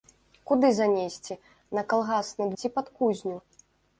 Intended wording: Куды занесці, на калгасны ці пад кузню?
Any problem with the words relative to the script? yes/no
no